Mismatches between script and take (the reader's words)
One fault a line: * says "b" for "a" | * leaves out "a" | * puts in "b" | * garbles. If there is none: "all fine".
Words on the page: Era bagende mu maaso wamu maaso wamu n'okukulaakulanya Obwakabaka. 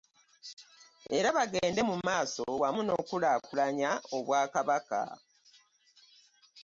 * leaves out "maaso wamu"